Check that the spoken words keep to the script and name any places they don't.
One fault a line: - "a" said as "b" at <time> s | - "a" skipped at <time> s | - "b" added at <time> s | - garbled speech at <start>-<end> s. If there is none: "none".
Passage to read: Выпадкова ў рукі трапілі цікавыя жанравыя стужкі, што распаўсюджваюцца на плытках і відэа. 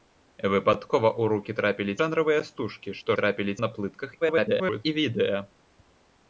- "цікавыя" skipped at 1.9 s
- "распаўсюджваюцца" said as "трапілі" at 3.2 s
- garbled speech at 4.2-4.8 s